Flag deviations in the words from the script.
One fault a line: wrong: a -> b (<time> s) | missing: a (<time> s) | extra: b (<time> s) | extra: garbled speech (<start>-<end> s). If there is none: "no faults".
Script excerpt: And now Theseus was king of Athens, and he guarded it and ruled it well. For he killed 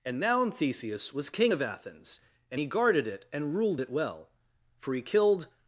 no faults